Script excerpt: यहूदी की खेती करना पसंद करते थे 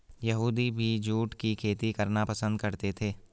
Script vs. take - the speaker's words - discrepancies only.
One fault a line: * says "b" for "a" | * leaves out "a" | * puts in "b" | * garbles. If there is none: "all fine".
* puts in "भी जूट"